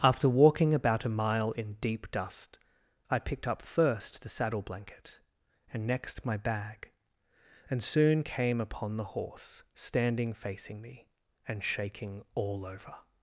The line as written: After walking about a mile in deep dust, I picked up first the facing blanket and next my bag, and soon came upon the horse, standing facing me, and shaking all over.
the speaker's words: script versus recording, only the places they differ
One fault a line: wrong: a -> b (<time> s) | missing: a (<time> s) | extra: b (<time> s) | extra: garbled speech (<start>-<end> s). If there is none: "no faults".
wrong: facing -> saddle (4.3 s)